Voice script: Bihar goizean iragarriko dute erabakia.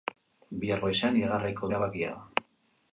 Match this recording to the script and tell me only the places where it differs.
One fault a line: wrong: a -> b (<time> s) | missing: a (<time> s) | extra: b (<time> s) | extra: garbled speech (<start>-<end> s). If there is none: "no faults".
missing: dute (1.7 s)